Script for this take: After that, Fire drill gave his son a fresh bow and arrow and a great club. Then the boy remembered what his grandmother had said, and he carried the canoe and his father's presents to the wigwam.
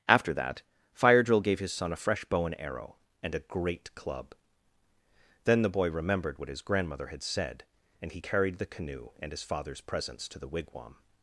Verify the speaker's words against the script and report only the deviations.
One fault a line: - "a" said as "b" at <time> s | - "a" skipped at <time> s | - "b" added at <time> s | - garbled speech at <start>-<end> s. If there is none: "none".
none